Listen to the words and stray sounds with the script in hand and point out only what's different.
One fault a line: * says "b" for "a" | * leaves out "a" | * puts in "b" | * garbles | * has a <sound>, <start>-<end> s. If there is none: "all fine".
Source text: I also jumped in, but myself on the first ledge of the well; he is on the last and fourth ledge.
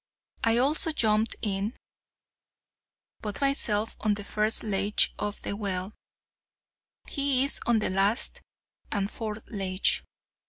all fine